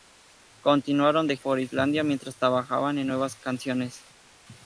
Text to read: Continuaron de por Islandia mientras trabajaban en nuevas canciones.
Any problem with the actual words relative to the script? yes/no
no